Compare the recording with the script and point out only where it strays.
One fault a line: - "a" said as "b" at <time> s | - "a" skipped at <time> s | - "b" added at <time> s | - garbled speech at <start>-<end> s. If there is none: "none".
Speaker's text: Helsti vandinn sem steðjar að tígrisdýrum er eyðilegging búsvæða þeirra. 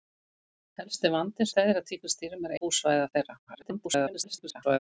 - "sem" skipped at 1.5 s
- "eyðilegging" skipped at 2.6 s
- garbled speech at 3.5-4.8 s